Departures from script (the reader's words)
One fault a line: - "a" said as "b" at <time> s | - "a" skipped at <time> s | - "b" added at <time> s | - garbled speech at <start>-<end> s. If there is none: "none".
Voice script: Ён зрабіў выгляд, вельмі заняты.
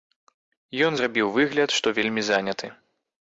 - "што" added at 1.8 s